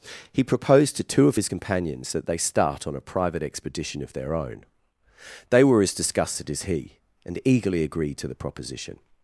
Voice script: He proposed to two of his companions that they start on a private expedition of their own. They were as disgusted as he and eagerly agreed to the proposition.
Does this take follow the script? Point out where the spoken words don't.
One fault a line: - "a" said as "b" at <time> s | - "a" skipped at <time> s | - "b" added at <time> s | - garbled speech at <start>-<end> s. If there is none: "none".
none